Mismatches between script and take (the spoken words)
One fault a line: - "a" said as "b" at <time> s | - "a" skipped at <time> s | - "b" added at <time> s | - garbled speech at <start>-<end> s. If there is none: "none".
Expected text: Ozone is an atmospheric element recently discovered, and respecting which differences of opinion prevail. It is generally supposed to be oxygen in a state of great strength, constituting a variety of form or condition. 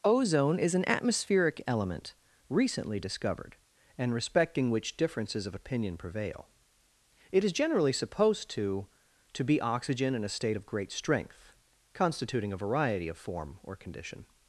- "to" added at 9.3 s